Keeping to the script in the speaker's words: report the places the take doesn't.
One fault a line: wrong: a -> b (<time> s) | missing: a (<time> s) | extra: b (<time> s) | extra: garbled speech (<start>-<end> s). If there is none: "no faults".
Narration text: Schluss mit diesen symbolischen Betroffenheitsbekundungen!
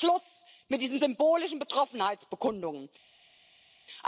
no faults